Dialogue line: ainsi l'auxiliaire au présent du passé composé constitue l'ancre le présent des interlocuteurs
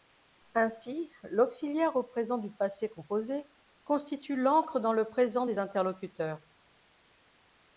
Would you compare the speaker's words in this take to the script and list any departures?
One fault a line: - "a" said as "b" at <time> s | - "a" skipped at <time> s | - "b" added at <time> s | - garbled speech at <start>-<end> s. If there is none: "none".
- "dans" added at 4.8 s